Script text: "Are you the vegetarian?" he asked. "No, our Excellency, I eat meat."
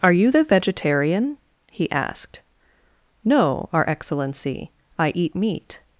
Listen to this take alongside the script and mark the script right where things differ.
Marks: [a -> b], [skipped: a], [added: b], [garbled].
"Are you the vegetarian?" he asked. "No, our Excellency, I eat meat."